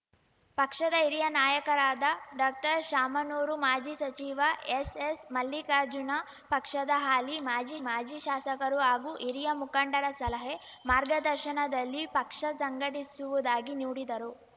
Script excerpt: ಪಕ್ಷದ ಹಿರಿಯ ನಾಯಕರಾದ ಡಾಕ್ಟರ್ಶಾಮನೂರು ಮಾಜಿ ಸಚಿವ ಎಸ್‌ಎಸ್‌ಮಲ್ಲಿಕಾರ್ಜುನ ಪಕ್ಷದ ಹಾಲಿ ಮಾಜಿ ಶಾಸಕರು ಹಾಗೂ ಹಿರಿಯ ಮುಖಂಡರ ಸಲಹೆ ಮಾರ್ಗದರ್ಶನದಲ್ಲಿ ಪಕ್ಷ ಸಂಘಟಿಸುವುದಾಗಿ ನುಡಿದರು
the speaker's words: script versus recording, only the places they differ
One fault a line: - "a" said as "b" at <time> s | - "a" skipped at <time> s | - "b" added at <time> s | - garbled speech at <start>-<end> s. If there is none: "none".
- "ಮಾಜಿ" added at 7.8 s